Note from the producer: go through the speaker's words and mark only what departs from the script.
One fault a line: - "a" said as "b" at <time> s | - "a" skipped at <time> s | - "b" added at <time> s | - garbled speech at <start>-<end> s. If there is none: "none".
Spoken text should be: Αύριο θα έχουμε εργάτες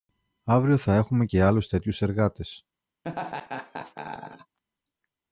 - "και άλλους τέτοιους" added at 1.2 s